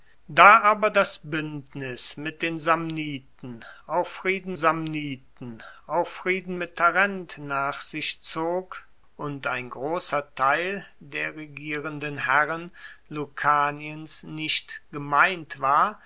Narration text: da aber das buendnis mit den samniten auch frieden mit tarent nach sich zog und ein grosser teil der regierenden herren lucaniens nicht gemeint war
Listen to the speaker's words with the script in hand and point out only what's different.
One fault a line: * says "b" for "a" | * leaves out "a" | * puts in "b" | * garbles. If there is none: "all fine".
* puts in "samniten auch frieden"